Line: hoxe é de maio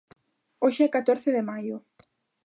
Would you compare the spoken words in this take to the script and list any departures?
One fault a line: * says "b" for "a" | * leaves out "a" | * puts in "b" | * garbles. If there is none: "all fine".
* puts in "catorce"